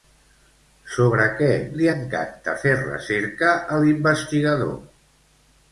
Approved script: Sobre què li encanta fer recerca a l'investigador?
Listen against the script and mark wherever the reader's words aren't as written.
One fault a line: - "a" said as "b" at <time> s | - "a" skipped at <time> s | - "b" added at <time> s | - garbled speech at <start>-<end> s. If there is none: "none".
none